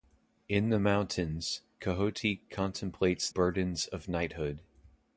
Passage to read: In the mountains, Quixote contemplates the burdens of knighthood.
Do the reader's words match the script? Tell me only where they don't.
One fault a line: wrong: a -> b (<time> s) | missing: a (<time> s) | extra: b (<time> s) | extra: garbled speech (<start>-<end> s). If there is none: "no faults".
missing: the (3.3 s)